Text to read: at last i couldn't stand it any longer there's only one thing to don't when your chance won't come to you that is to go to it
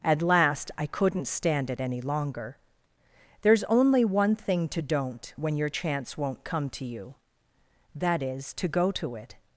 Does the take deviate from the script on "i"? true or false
false